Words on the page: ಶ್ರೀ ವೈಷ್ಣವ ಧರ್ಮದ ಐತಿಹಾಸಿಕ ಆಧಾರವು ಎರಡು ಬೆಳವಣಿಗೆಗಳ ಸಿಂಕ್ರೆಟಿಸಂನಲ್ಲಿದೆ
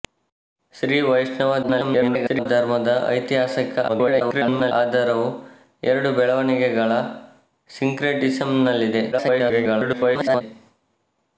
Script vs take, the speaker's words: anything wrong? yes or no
yes